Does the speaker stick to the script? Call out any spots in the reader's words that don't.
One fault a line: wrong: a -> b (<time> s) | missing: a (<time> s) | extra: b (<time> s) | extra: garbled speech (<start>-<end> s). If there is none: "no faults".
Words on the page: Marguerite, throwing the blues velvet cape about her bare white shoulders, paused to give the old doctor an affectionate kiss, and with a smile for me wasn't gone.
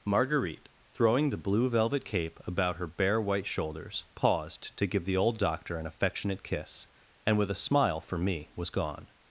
wrong: blues -> blue (1.4 s)
wrong: wasn't -> was (8.5 s)